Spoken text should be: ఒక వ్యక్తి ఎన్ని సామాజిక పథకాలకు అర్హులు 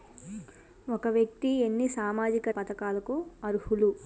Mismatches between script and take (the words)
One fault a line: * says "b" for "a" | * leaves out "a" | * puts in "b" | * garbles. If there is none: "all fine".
all fine